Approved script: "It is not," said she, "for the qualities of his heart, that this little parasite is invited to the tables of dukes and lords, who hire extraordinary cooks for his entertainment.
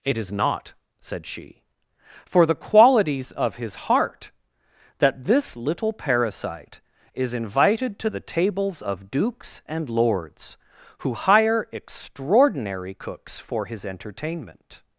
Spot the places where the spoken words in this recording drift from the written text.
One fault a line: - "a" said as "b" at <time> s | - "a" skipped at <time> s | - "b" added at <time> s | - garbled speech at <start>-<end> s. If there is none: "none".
none